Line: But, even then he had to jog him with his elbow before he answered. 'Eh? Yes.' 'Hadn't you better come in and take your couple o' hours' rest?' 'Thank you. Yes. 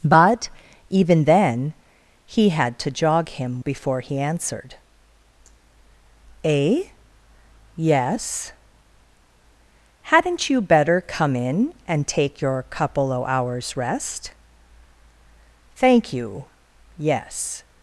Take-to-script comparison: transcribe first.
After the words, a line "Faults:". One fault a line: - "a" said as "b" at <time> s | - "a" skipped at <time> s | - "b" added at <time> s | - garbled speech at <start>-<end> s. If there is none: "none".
But, even then he had to jog him before he answered. 'Eh? Yes.' 'Hadn't you better come in and take your couple o' hours' rest?' 'Thank you. Yes.
Faults:
- "with his elbow" skipped at 3.6 s